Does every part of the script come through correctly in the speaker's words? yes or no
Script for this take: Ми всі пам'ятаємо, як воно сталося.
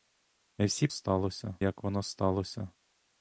no